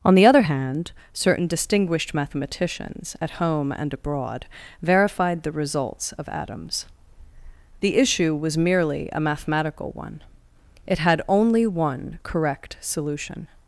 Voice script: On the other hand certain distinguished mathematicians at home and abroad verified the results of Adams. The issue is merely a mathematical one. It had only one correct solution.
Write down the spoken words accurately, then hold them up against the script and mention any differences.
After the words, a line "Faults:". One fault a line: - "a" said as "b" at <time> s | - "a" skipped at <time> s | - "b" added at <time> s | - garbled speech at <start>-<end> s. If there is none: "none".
On the other hand certain distinguished mathematicians at home and abroad verified the results of Adams. The issue was merely a mathematical one. It had only one correct solution.
Faults:
- "is" said as "was" at 8.3 s